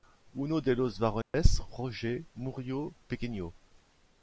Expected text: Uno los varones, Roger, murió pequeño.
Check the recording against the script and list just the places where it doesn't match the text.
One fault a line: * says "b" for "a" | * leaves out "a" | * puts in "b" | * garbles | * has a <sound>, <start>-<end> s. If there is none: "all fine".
* puts in "de"
* has a dropout, 1.2-1.3 s